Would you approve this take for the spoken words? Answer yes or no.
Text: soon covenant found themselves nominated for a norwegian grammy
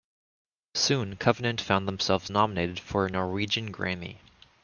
yes